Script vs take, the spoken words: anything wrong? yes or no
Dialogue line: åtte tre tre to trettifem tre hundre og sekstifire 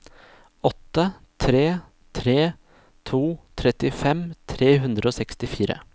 no